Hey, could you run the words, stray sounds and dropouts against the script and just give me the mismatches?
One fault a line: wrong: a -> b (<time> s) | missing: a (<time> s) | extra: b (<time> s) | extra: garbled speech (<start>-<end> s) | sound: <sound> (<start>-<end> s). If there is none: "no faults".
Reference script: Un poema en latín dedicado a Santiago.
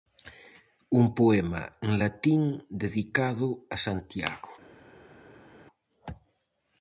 no faults